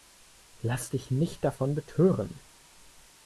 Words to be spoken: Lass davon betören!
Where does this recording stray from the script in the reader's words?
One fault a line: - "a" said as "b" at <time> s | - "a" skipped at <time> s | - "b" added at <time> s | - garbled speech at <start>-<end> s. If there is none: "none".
- "dich nicht" added at 0.9 s